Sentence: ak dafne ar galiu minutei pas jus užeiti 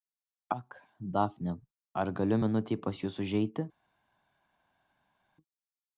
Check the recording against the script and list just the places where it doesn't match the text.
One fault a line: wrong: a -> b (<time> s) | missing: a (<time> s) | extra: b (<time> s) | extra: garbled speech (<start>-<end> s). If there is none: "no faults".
no faults